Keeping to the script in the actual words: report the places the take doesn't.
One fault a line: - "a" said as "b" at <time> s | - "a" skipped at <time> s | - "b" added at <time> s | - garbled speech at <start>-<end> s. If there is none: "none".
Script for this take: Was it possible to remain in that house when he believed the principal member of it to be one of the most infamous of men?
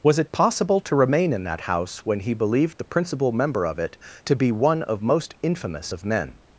- "the" skipped at 5.0 s